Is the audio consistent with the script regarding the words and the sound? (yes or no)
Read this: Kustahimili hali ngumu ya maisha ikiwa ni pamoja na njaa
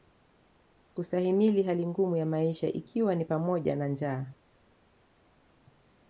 yes